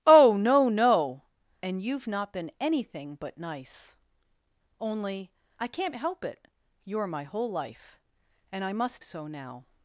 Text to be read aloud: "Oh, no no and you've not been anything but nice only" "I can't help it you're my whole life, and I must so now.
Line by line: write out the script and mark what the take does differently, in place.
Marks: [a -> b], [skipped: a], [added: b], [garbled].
"Oh, no no and you've not been anything but nice only" "I can't help it you're my whole life, and I must so now.